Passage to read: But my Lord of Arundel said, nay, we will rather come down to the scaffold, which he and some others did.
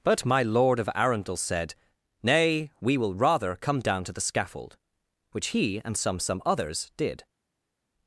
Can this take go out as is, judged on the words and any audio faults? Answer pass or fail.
fail